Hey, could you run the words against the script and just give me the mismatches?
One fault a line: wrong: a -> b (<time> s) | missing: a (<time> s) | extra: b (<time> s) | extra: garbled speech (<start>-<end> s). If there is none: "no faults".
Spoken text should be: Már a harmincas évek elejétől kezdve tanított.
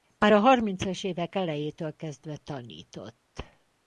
no faults